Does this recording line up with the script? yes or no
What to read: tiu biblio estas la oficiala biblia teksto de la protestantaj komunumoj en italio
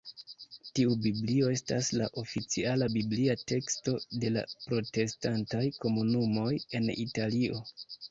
yes